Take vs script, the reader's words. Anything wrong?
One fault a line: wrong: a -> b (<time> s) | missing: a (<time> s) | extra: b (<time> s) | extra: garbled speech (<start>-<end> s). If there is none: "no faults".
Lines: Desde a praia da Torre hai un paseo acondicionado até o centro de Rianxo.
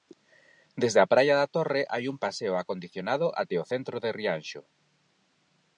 no faults